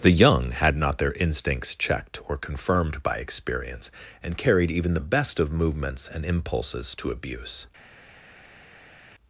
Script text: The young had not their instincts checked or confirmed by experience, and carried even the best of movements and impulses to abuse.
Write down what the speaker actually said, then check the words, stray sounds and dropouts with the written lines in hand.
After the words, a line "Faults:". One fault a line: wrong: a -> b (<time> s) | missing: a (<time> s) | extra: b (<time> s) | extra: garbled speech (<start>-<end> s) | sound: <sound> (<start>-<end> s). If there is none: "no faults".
The young had not their instincts checked or confirmed by experience, and carried even the best of movements and impulses to abuse.
Faults:
no faults